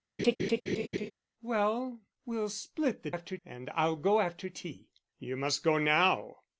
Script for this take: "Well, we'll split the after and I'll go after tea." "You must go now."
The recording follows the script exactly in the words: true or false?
true